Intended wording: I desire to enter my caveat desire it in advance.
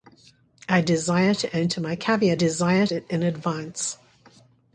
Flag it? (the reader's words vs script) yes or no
no